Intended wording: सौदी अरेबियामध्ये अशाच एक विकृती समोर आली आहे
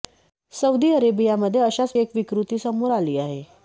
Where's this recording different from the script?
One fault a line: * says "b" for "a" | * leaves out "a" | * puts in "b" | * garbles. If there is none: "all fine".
all fine